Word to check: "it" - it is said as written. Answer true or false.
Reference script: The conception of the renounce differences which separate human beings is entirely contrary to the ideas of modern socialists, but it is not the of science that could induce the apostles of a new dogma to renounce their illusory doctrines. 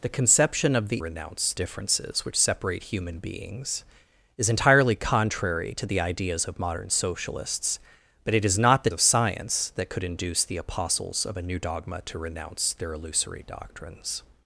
true